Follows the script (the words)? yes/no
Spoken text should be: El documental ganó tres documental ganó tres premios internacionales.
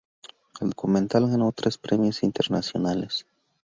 no